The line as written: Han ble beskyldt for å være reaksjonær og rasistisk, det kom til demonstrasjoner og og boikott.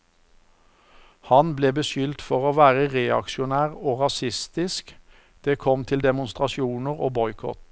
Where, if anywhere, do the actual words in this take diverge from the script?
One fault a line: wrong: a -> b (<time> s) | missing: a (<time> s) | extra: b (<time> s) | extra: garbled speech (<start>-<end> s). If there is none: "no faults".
missing: og (7.1 s)